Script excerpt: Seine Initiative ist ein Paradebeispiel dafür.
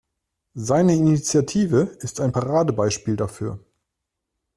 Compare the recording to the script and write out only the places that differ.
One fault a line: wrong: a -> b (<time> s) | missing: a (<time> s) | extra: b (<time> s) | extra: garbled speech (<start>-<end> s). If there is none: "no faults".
no faults